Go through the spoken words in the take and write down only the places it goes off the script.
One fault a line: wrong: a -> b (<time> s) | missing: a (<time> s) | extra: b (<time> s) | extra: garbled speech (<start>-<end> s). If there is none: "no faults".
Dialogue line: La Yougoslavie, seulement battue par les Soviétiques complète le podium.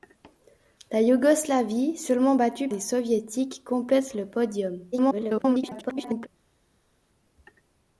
missing: par (2.7 s)
extra: garbled speech (4.9-6.3 s)